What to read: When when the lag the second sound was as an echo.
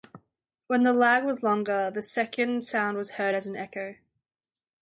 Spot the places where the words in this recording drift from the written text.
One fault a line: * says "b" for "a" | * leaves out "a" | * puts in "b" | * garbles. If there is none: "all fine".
* leaves out "when"
* puts in "was longer"
* puts in "heard"